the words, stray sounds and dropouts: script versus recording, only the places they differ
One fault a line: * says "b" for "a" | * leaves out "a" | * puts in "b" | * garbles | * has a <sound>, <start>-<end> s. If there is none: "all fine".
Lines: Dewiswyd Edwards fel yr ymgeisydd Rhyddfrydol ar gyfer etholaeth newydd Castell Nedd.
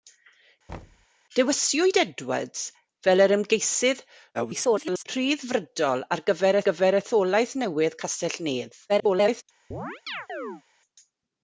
* has a thud, 0.7-1.1 s
* garbles
* puts in "gyfer"
* garbles
* has a chirp, 9.7-10.6 s